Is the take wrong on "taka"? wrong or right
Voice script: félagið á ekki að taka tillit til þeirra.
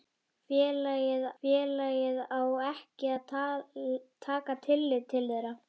right